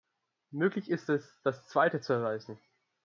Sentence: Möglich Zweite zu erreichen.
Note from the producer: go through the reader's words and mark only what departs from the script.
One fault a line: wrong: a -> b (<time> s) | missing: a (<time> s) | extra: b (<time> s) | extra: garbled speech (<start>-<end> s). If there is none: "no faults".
extra: ist es das (0.9 s)